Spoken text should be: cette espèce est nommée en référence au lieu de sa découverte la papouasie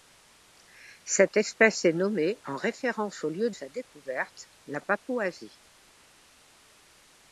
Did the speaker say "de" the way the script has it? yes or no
no